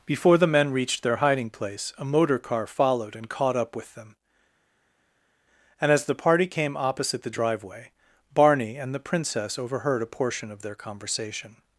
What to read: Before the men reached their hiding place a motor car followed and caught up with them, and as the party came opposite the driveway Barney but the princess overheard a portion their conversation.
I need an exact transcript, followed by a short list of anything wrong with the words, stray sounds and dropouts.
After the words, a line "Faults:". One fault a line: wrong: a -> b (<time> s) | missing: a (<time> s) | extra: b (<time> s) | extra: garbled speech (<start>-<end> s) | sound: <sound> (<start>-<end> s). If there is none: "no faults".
Before the men reached their hiding place a motor car followed and caught up with them, and as the party came opposite the driveway Barney and the princess overheard a portion of their conversation.
Faults:
wrong: but -> and (8.8 s)
extra: of (10.5 s)